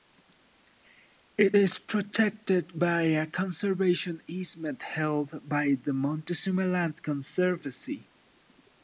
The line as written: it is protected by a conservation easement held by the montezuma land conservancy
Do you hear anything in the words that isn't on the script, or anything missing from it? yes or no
no